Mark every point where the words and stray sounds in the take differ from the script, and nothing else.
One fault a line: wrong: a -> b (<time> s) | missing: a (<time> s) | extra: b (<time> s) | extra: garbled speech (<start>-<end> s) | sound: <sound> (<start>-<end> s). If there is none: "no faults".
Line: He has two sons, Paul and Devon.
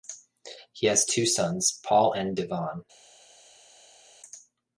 no faults